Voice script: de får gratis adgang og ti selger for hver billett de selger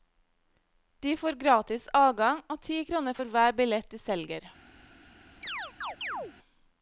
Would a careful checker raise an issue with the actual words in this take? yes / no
yes